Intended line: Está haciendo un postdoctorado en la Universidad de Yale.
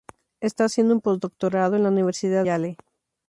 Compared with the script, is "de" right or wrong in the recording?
wrong